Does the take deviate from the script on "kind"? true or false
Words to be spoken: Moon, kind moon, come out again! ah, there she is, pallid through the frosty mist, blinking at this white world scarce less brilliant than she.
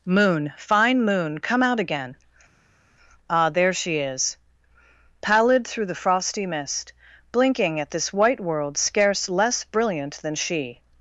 true